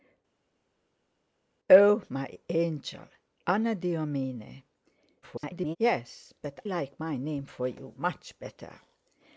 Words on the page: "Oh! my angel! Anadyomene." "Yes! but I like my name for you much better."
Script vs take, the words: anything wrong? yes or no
yes